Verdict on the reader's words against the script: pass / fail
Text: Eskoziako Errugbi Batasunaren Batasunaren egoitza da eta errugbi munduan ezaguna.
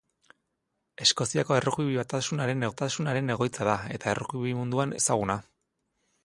pass